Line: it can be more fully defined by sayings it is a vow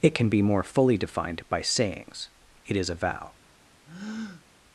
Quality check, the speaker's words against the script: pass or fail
pass